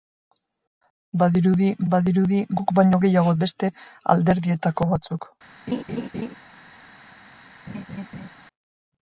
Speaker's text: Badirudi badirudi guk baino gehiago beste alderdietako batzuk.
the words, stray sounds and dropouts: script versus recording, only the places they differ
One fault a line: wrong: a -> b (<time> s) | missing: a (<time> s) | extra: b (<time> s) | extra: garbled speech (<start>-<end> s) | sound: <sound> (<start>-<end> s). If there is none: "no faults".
sound: laugh (5.7-6.4 s)
sound: laugh (7.7-8.3 s)